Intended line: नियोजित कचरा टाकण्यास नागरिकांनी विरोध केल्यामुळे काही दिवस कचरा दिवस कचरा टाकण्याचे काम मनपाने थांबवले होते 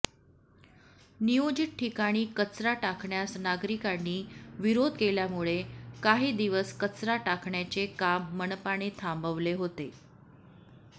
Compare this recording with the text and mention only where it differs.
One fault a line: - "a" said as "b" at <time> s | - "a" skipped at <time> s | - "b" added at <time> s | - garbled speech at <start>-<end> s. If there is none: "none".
- "ठिकाणी" added at 1.8 s
- "दिवस कचरा" skipped at 7.2 s